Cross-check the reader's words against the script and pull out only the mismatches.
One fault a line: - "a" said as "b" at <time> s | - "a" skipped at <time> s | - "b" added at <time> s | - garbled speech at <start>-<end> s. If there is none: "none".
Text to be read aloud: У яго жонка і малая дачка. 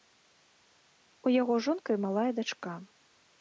none